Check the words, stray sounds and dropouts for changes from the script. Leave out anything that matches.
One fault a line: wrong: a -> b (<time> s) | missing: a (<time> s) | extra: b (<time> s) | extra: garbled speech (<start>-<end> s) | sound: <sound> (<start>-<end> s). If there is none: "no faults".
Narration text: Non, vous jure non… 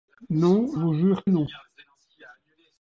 no faults